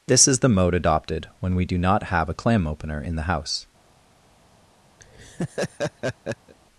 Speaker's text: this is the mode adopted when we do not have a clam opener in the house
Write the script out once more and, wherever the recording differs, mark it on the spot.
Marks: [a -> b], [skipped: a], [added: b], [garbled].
this is the mode adopted when we do not have a clam opener in the house